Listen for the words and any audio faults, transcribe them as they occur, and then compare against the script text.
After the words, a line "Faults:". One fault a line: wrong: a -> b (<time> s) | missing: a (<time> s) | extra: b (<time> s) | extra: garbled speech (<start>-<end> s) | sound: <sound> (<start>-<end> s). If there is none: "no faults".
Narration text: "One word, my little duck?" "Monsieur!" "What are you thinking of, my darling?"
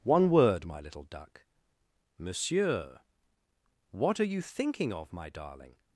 "One word, my little duck?" "Monsieur!" "What are you thinking of, my darling?"
Faults:
no faults